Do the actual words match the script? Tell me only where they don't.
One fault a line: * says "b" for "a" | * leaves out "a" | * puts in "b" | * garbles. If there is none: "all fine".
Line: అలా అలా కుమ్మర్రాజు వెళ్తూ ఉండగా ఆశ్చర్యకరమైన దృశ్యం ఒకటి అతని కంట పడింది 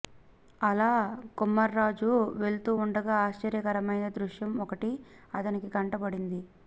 * leaves out "అలా"